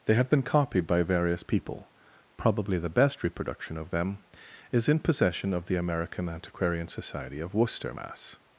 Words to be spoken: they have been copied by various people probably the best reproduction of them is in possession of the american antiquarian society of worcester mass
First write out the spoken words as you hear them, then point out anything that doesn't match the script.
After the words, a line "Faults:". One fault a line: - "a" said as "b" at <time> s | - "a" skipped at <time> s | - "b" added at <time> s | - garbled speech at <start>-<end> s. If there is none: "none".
they have been copied by various people probably the best reproduction of them is in possession of the american antiquarian society of worcester mass
Faults:
none